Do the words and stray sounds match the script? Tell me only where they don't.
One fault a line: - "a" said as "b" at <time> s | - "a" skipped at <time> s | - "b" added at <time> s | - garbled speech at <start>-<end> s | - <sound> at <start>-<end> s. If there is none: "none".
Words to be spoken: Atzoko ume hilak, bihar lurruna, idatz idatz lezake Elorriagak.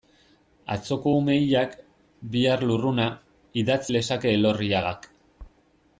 - "idatz" skipped at 3.8 s